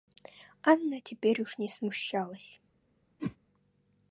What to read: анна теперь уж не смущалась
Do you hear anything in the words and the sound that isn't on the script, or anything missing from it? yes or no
yes